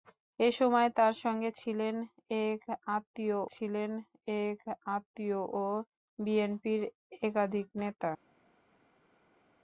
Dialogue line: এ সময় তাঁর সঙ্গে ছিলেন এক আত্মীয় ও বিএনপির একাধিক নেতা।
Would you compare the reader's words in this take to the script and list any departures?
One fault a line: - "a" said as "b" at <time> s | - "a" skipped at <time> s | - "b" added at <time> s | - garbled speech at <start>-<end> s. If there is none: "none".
- "ছিলেন এক আত্মীয়" added at 3.5 s